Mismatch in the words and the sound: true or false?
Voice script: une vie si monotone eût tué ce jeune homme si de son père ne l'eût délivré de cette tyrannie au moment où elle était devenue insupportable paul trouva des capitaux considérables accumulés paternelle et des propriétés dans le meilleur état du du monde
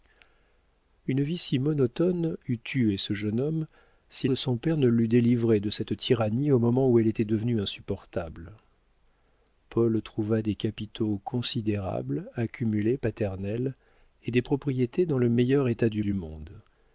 false